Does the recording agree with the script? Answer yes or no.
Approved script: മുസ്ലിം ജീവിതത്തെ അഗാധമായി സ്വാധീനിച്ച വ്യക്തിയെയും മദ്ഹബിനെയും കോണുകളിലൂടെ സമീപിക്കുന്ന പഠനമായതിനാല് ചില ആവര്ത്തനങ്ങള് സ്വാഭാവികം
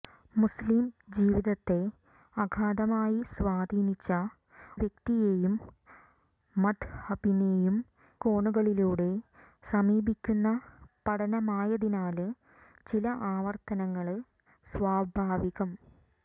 yes